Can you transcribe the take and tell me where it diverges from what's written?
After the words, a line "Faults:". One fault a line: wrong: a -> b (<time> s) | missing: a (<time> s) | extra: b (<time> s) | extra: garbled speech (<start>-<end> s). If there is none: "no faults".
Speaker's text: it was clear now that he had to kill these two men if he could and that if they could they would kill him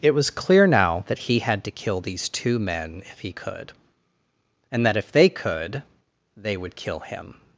it was clear now that he had to kill these two men if he could and that if they could they would kill him
Faults:
no faults